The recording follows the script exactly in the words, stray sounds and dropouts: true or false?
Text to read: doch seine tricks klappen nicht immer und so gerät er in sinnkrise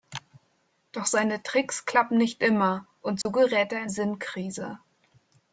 false